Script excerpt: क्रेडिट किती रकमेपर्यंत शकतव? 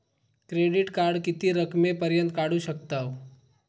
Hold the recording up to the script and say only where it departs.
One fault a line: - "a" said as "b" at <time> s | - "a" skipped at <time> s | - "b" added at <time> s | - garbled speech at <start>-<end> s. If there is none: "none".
- "कार्ड" added at 0.9 s
- "काढू" added at 2.3 s